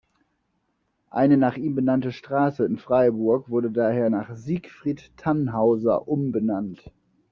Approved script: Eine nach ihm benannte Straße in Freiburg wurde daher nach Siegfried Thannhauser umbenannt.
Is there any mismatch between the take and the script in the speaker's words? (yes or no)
no